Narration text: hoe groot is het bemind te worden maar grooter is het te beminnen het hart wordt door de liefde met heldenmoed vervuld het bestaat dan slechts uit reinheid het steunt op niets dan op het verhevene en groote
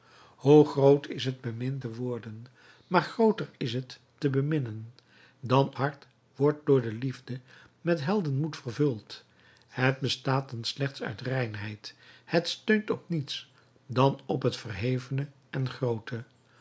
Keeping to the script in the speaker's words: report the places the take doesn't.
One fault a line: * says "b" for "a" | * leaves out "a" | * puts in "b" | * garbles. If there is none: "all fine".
* says "dan" for "het"